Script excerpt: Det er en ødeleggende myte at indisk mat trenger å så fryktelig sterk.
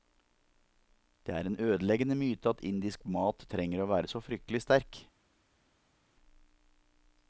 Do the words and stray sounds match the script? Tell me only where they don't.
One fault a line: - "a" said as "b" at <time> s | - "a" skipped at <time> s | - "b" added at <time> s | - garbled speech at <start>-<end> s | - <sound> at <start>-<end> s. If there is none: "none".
- "være" added at 3.9 s